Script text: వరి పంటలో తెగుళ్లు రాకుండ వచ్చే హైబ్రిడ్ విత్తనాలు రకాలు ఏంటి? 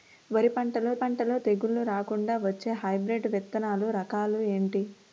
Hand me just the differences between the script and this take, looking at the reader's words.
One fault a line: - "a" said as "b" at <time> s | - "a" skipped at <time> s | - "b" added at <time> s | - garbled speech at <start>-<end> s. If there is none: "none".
- "పంటలో" added at 0.9 s